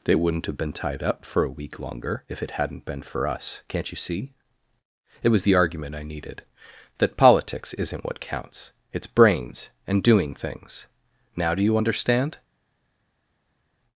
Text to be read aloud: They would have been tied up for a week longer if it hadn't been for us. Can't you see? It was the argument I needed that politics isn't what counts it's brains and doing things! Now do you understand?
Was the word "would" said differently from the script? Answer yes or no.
yes